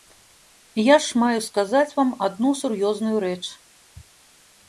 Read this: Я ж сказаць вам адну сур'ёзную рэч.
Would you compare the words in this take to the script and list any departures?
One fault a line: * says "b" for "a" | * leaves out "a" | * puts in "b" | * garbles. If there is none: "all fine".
* puts in "маю"